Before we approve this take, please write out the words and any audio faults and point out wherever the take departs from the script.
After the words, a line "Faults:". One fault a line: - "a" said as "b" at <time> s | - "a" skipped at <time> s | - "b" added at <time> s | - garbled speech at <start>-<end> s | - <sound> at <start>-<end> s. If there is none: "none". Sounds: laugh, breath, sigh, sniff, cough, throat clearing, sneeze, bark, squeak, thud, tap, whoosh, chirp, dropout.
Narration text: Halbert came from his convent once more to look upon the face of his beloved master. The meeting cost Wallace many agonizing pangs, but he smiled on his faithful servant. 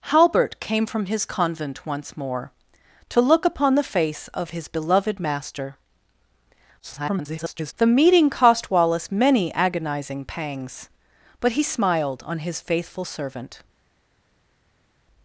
Halbert came from his convent once more to look upon the face of his beloved master. [garbled] The meeting cost Wallace many agonizing pangs, but he smiled on his faithful servant.
Faults:
- garbled speech at 6.8-7.7 s